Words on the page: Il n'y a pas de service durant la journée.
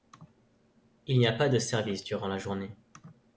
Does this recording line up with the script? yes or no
yes